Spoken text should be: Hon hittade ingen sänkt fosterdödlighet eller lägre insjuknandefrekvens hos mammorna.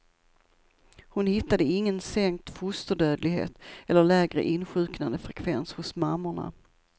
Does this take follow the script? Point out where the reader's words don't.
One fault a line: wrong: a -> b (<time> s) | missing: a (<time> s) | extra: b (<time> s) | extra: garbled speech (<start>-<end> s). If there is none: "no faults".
no faults